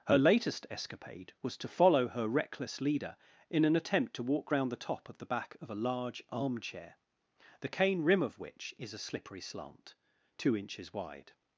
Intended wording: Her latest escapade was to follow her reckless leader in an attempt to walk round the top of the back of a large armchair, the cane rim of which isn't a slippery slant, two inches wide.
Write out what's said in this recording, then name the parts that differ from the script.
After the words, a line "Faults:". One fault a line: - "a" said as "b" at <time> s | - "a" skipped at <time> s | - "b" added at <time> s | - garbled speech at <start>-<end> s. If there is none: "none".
Her latest escapade was to follow her reckless leader in an attempt to walk round the top of the back of a large armchair, the cane rim of which is a slippery slant, two inches wide.
Faults:
- "isn't" said as "is" at 8.8 s